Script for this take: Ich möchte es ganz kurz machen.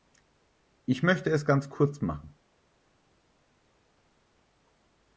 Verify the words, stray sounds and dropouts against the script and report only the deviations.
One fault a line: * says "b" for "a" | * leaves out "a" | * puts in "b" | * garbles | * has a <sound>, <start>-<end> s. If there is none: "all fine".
all fine